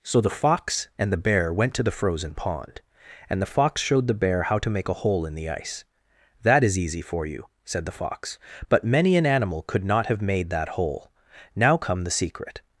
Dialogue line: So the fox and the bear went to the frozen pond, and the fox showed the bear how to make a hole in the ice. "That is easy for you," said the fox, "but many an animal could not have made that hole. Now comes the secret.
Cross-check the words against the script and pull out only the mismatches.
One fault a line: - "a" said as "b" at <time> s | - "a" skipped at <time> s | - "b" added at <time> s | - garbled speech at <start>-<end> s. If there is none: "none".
- "comes" said as "come" at 11.8 s